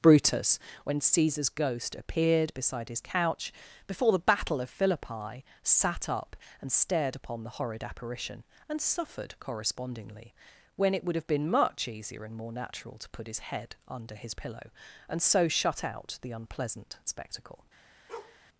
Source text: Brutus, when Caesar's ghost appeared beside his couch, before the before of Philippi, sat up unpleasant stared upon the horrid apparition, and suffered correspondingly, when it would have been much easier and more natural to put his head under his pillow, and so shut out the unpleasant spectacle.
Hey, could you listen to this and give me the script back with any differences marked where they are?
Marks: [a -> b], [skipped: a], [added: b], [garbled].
Brutus, when Caesar's ghost appeared beside his couch, before the [before -> battle] of Philippi, sat up [unpleasant -> and] stared upon the horrid apparition, and suffered correspondingly, when it would have been much easier and more natural to put his head under his pillow, and so shut out the unpleasant spectacle.